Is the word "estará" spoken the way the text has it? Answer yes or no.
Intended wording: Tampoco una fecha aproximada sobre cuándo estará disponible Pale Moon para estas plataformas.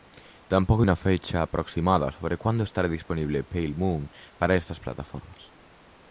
yes